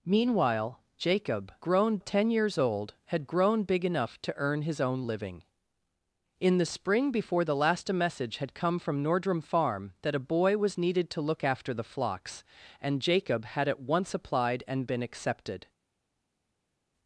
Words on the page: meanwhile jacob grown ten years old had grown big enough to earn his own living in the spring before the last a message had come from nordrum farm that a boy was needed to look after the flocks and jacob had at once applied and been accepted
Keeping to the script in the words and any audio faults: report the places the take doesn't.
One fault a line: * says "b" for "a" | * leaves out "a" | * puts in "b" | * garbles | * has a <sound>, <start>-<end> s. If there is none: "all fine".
all fine